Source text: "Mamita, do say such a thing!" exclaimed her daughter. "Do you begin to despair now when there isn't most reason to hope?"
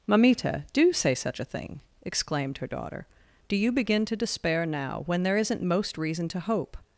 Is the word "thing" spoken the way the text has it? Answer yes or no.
yes